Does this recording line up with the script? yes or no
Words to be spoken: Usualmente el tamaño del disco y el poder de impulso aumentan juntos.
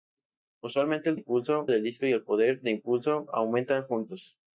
no